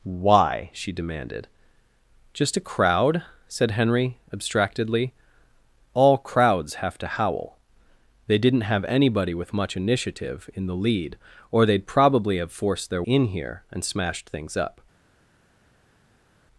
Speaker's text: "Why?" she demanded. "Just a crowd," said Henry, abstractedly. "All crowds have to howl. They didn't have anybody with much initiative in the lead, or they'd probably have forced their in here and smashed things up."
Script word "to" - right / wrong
right